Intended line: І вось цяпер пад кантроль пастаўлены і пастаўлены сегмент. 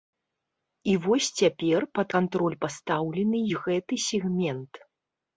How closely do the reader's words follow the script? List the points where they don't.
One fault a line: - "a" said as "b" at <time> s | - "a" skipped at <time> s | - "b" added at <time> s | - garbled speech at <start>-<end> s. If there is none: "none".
- "пастаўлены" said as "гэты" at 3.7 s